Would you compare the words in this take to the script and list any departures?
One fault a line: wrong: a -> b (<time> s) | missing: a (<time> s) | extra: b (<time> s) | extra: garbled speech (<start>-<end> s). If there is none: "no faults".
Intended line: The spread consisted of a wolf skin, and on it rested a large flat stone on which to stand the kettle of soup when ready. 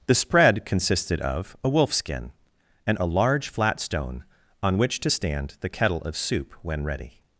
missing: on it rested (3.0 s)